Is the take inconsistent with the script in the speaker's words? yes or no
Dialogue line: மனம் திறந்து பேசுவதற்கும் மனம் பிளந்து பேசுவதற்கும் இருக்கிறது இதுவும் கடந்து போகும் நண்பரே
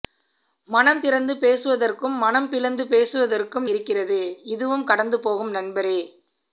no